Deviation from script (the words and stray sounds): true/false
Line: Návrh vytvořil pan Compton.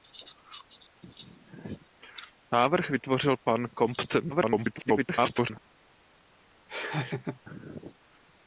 true